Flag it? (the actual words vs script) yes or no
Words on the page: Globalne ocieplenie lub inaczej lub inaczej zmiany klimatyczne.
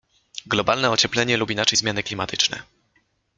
yes